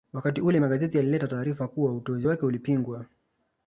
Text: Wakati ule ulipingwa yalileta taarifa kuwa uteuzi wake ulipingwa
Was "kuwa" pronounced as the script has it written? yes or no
yes